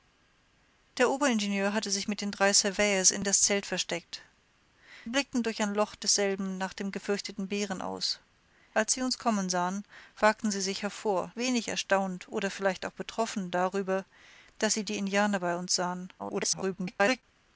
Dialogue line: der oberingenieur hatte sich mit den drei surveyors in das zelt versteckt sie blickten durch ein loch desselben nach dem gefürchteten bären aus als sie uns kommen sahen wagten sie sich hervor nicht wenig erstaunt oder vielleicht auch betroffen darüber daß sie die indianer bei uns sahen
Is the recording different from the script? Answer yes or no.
yes